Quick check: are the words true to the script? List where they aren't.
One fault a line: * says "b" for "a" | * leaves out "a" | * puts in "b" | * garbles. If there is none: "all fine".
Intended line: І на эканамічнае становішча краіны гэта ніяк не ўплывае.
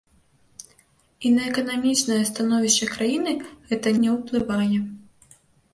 * leaves out "ніяк"